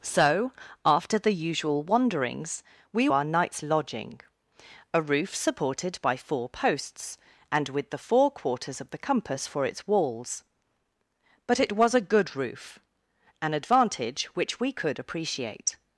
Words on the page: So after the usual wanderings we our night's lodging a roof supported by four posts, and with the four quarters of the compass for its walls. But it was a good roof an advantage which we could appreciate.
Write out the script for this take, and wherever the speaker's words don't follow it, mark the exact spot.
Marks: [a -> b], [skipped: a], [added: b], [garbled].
So after the usual wanderings we our night's lodging a roof supported by four posts, and with the four quarters of the compass for its walls. But it was a good roof an advantage which we could appreciate.